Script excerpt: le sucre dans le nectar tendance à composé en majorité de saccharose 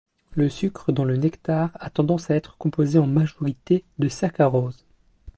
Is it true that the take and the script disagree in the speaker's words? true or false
true